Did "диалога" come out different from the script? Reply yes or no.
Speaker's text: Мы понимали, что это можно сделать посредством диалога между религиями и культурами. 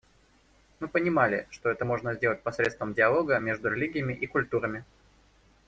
no